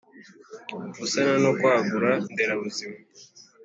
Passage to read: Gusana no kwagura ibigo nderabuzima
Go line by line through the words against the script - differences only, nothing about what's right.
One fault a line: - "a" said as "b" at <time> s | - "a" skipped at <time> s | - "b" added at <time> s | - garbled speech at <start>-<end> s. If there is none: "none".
- "ibigo" skipped at 2.1 s